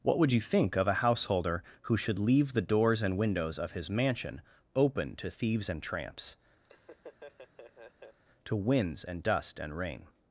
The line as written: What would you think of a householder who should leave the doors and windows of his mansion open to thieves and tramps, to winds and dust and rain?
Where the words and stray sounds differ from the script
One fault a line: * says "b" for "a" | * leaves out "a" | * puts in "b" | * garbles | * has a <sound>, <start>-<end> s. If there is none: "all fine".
* has a laugh, 6.6-8.2 s